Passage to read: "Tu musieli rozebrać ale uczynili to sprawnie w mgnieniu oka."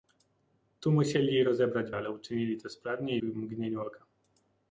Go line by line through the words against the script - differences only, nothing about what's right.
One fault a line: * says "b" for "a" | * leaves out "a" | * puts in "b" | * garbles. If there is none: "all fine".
all fine